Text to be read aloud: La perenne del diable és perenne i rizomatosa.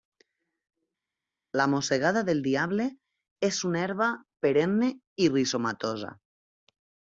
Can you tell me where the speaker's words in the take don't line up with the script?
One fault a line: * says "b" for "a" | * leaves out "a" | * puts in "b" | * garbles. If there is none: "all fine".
* says "mossegada" for "perenne"
* puts in "una herba"